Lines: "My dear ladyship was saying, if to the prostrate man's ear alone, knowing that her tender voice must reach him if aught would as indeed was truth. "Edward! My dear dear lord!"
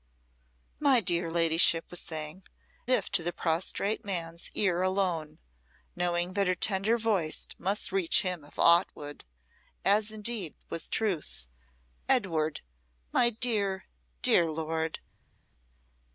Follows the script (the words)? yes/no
yes